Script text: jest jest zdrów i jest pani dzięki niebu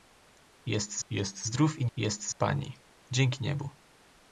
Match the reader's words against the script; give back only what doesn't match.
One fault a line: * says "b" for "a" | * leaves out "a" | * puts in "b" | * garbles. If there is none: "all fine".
all fine